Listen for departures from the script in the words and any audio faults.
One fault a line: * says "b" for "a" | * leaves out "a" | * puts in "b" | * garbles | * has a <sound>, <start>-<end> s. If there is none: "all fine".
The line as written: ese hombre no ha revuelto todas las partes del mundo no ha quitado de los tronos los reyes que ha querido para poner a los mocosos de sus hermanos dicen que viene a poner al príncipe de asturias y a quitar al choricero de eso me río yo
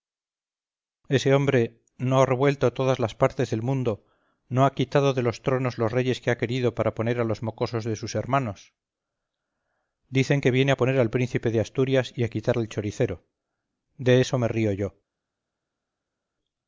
all fine